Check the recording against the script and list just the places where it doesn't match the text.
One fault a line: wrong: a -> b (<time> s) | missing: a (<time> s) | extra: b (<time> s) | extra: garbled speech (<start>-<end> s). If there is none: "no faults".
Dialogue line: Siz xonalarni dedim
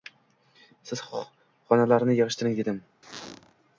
extra: yig`ishtiring (2.2 s)